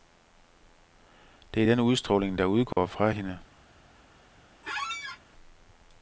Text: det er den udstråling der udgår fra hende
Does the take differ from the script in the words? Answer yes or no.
no